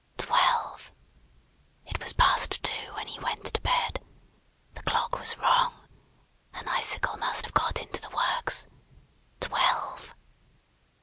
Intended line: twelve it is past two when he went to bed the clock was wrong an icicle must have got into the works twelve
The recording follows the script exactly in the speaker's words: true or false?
false